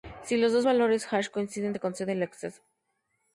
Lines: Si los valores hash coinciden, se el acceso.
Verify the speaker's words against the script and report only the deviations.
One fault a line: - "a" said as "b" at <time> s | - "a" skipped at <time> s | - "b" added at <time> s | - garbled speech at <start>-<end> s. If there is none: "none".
- "dos" added at 0.5 s
- "concede" added at 1.8 s